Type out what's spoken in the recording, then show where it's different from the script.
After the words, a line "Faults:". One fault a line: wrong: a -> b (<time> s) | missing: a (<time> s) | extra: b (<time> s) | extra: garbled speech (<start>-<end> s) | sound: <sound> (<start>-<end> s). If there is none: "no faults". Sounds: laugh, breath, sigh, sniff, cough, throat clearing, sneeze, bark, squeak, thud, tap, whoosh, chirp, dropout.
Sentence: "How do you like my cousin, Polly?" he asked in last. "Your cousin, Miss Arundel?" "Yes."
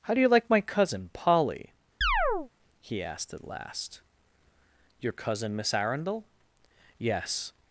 "How do you like my cousin, Polly?" he asked at last. "Your cousin, Miss Arundel?" "Yes."
Faults:
sound: chirp (2.0-2.5 s)
wrong: in -> at (3.3 s)